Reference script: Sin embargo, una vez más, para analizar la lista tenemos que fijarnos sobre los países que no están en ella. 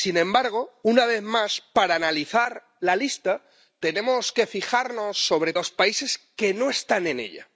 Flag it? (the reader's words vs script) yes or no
no